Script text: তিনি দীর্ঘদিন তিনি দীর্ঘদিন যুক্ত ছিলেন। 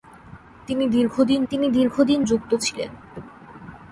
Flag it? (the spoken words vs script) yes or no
no